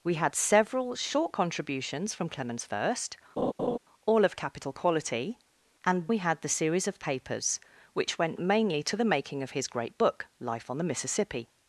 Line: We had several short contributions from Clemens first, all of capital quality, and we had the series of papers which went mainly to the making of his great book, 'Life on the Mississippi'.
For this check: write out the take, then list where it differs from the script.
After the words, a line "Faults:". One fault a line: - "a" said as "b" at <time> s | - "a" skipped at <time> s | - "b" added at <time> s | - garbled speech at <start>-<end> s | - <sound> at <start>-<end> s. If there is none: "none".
We had several short contributions from Clemens first, all of capital quality, and we had the series of papers which went mainly to the making of his great book, 'Life on the Mississippi'.
Faults:
- laugh at 3.4-3.8 s